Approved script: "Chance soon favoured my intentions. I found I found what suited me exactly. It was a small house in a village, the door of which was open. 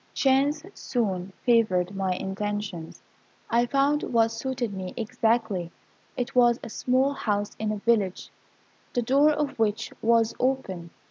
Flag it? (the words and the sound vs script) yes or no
yes